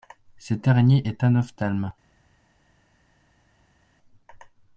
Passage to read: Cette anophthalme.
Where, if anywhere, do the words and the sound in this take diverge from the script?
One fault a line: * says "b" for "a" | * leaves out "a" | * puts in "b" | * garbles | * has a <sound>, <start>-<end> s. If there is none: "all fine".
* puts in "araignée est"